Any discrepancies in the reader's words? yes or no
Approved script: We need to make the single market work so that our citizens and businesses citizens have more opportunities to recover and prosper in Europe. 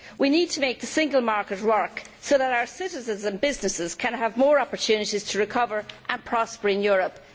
yes